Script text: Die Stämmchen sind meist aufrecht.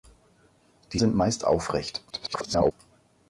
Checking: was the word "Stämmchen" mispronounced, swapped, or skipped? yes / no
yes